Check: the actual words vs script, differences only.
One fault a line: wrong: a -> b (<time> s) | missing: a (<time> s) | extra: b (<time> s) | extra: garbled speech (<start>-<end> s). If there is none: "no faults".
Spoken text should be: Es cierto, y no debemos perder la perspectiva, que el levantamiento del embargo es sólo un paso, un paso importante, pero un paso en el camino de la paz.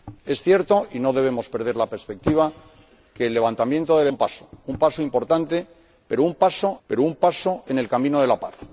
wrong: embargo es sólo -> un paso (4.1 s)
extra: importante pero (5.0 s)
missing: importante (6.8 s)